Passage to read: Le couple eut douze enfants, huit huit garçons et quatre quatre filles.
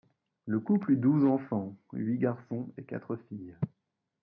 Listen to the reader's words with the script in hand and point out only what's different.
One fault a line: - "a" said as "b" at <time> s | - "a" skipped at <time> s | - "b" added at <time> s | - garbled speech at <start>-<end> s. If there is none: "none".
- "huit" skipped at 2.2 s
- "quatre" skipped at 3.2 s